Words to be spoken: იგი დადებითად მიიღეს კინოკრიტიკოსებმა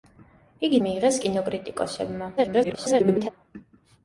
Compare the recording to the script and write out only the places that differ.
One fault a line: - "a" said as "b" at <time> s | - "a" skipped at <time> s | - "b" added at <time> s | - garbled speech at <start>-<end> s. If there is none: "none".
- "დადებითად" skipped at 0.8 s
- garbled speech at 2.4-3.3 s